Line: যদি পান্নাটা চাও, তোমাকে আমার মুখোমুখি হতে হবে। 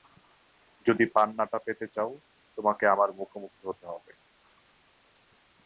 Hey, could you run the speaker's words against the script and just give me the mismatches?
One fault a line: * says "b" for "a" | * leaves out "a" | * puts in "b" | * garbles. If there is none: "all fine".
* puts in "পেতে"